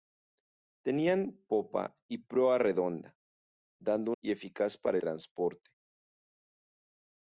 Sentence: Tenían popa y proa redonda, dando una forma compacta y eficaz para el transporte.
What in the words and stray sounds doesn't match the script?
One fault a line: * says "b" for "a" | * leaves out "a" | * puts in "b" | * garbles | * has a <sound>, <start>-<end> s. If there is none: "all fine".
* leaves out "una forma compacta"
* leaves out "el"